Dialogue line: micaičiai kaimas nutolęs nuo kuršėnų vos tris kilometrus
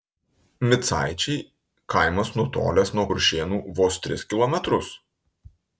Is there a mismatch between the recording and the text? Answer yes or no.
no